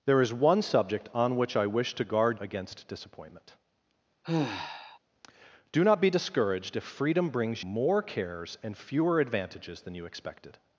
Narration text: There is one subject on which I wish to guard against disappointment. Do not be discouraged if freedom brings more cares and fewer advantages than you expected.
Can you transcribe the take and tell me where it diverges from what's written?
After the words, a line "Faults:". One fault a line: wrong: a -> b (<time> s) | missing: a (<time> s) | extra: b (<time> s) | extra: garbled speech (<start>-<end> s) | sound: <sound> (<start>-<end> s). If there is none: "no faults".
There is one subject on which I wish to guard against disappointment. Do not be discouraged if freedom brings more cares and fewer advantages than you expected.
Faults:
sound: sigh (4.2-5.0 s)